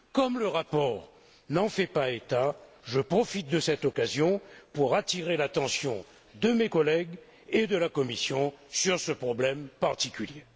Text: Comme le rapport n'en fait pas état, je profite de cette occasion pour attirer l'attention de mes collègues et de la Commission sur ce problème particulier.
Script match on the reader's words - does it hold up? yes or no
yes